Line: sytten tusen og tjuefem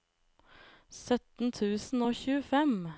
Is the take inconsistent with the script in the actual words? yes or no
no